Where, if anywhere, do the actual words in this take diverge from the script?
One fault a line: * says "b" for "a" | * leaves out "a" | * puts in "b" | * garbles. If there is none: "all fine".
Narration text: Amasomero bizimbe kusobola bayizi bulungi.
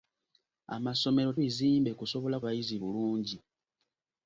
all fine